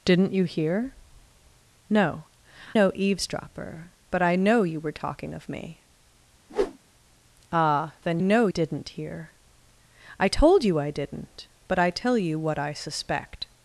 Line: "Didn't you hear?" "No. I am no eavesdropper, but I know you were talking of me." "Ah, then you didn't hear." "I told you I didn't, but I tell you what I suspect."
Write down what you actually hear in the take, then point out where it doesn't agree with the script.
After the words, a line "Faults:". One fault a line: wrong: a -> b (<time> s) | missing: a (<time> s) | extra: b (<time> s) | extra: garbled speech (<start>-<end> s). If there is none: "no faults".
"Didn't you hear?" "No. no eavesdropper, but I know you were talking of me." "Ah, then know didn't hear." "I told you I didn't, but I tell you what I suspect."
Faults:
missing: I am (2.2 s)
wrong: you -> know (8.2 s)